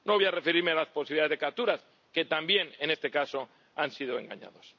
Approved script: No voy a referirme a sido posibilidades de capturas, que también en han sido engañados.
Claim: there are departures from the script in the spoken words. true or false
true